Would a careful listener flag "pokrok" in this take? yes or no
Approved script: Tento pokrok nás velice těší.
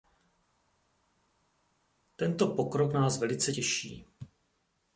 no